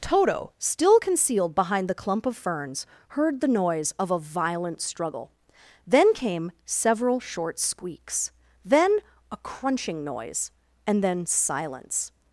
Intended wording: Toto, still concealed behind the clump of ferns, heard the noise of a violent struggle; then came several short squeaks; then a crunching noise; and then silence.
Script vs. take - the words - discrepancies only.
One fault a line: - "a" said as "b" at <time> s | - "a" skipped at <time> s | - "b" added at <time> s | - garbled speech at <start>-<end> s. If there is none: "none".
none